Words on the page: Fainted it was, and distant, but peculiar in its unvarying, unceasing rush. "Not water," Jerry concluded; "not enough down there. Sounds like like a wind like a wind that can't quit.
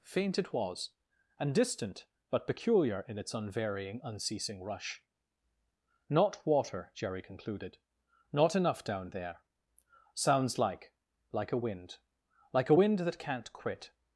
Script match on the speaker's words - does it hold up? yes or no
no